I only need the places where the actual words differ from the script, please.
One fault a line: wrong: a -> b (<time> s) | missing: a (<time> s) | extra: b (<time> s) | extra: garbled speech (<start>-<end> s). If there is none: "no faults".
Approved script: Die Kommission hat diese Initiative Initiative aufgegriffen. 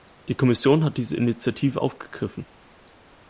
missing: Initiative (1.8 s)